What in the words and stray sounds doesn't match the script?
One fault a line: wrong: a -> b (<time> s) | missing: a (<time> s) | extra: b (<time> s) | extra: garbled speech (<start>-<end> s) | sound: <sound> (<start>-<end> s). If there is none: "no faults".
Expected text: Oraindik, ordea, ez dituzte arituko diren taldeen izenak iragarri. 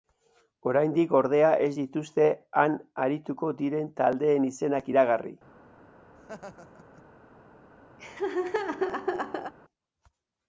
extra: han (2.6 s)
sound: laugh (6.2-7.0 s)
sound: laugh (8.0-9.5 s)